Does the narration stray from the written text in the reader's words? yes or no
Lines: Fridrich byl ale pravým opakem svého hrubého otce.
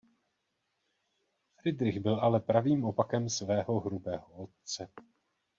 no